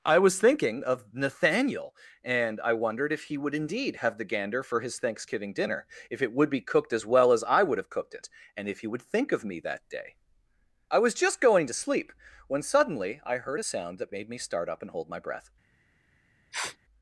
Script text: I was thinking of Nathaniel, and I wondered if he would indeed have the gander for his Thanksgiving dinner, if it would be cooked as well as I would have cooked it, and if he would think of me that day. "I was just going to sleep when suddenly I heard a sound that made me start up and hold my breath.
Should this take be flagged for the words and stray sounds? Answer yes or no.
yes